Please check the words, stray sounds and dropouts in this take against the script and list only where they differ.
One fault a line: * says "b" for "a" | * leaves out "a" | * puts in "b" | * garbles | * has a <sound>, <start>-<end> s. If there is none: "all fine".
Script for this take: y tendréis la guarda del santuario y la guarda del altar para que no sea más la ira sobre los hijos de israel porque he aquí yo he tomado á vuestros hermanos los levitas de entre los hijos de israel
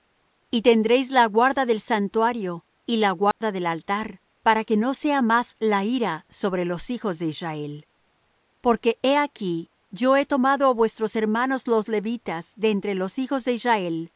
* has a dropout, 3.3-3.4 s